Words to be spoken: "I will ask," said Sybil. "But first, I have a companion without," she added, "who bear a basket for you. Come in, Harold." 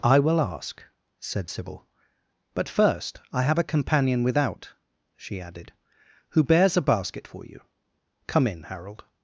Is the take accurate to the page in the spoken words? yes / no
no